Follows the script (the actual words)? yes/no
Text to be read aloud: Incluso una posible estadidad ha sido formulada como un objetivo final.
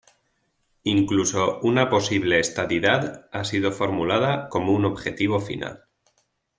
yes